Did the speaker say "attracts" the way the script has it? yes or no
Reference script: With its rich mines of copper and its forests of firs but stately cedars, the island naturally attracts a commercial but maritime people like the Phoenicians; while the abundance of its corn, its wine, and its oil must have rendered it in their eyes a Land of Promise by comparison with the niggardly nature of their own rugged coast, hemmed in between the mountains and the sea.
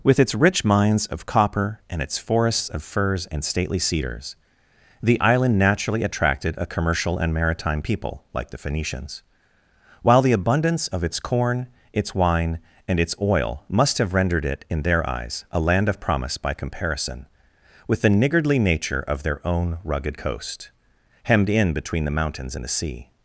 no